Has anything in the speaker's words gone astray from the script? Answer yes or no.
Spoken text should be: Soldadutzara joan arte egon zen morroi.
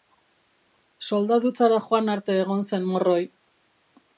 no